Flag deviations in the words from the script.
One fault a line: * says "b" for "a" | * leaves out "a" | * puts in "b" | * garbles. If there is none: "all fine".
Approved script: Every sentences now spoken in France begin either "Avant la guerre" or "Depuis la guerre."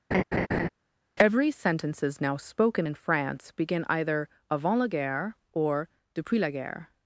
all fine